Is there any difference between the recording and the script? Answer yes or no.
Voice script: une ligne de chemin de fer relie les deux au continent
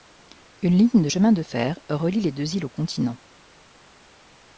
yes